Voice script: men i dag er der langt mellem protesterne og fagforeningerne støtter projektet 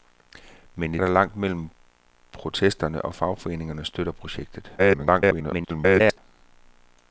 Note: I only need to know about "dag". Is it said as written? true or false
false